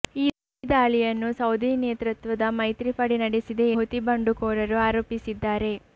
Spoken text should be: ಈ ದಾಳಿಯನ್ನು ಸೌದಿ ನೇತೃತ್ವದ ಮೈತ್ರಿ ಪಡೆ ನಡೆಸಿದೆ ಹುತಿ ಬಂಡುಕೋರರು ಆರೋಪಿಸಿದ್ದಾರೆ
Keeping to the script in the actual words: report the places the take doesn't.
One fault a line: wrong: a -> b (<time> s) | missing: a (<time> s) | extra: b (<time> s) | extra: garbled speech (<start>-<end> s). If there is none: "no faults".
no faults